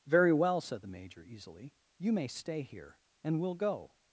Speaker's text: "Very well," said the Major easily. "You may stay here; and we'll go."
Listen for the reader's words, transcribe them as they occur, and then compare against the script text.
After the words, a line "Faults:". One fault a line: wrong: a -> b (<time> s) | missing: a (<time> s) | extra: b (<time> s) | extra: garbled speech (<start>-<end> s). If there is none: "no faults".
"Very well," said the Major easily. "You may stay here; and we'll go."
Faults:
no faults